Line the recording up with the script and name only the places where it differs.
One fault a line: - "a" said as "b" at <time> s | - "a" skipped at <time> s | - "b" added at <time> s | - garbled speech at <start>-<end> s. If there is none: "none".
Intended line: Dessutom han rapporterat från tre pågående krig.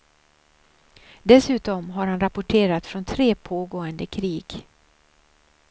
- "har" added at 1.9 s